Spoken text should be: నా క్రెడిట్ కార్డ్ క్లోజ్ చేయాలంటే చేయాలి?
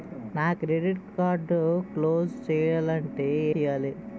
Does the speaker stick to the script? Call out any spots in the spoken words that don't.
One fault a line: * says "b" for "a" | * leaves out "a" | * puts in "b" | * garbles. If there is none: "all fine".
all fine